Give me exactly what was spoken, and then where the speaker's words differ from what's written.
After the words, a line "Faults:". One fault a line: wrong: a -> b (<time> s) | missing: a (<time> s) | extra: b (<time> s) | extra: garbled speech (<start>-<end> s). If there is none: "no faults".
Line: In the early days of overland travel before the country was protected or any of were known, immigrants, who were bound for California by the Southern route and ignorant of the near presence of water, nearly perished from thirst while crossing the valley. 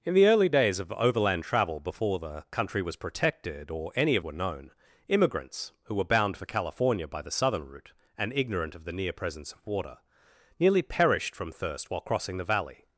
In the early days of overland travel before the country was protected or any of were known, immigrants, who were bound for California by the Southern route and ignorant of the near presence of water, nearly perished from thirst while crossing the valley.
Faults:
no faults